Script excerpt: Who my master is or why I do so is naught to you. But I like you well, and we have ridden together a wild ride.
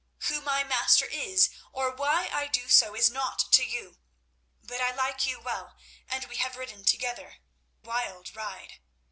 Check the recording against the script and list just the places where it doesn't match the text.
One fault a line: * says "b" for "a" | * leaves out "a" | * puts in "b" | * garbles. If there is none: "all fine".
* leaves out "a"